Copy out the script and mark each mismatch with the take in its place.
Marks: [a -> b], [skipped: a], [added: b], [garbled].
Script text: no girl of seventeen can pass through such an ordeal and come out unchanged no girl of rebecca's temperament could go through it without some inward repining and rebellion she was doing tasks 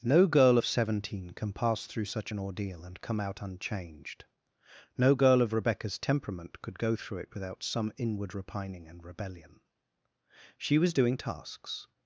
no girl of seventeen can pass through such an ordeal and come out unchanged no girl of rebecca's temperament could go through it without some inward repining and rebellion she was doing tasks